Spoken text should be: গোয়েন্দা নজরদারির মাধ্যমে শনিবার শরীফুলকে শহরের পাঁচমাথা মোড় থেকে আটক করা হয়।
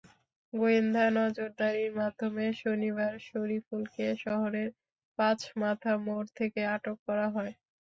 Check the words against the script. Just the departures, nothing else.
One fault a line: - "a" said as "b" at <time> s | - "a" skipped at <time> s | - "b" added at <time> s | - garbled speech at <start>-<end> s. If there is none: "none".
none